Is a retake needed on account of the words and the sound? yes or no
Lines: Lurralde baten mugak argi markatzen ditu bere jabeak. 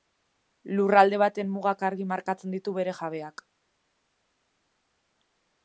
no